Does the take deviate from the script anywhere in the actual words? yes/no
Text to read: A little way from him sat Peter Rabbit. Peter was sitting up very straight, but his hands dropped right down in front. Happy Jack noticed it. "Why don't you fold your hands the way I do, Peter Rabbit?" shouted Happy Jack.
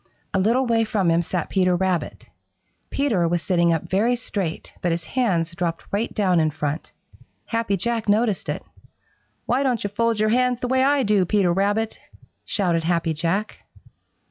no